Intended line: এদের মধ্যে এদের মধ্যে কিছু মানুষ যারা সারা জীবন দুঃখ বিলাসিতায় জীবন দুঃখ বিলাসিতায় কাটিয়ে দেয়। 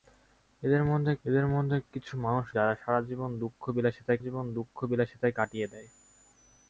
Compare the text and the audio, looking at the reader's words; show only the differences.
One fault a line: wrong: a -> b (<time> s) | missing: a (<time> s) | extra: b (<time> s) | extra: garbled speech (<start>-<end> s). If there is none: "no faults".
no faults